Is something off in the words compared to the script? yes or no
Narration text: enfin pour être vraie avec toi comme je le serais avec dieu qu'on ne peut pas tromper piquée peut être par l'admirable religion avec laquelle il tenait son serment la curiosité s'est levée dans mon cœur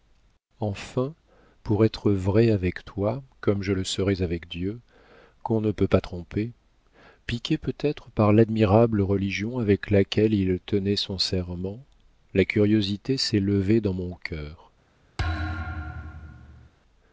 no